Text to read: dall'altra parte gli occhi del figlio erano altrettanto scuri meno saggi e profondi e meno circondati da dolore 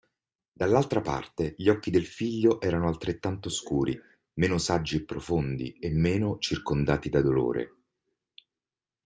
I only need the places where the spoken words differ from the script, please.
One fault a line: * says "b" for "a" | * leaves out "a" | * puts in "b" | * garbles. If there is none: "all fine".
all fine